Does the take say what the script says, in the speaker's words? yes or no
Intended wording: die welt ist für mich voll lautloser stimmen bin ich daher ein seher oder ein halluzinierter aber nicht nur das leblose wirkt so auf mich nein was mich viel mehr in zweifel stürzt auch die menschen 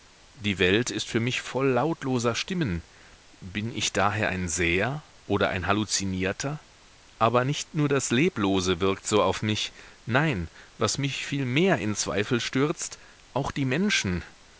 yes